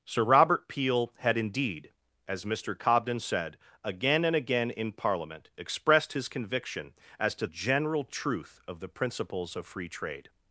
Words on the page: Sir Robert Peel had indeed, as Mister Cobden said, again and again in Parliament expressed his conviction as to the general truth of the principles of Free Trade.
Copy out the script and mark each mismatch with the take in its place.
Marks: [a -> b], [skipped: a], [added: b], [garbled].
Sir Robert Peel had indeed, as Mister Cobden said, again and again in Parliament expressed his conviction as to [skipped: the] general truth of the principles of Free Trade.